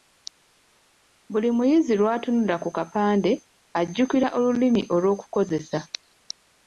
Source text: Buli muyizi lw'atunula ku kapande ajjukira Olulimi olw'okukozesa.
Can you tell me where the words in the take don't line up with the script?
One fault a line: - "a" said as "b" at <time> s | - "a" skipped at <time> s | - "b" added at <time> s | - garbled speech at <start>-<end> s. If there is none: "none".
none